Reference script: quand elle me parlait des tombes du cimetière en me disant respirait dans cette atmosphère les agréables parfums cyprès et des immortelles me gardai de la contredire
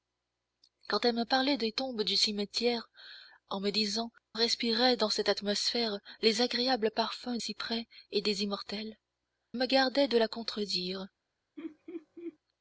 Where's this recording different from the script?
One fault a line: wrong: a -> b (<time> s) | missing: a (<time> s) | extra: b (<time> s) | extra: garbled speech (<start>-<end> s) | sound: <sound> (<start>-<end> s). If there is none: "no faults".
sound: laugh (11.6-12.4 s)